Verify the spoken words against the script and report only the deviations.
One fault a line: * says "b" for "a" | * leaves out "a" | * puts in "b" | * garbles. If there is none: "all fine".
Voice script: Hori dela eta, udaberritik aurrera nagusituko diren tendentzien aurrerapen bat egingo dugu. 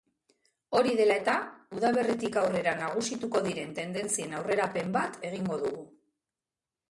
all fine